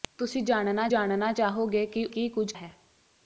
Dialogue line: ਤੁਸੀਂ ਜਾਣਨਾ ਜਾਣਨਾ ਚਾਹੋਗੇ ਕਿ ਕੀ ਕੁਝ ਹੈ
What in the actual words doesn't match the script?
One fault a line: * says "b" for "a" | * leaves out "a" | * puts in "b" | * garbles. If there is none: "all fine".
all fine